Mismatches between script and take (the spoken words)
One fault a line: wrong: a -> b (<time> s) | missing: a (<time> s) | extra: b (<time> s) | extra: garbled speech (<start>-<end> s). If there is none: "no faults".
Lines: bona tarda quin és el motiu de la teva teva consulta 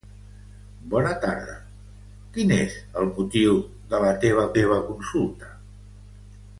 no faults